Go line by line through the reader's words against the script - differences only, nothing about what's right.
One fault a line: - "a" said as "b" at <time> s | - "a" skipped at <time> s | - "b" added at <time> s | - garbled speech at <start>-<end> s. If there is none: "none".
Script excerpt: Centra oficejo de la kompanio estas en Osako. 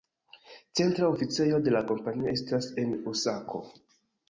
none